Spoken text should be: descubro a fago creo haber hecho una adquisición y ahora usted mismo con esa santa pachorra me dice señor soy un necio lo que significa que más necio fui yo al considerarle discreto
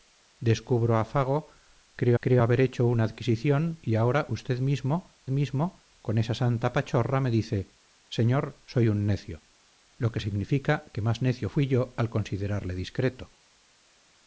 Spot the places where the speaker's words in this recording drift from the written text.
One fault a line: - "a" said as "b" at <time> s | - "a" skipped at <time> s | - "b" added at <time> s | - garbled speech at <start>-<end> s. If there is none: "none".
- "creo" added at 2.2 s
- "mismo" added at 5.3 s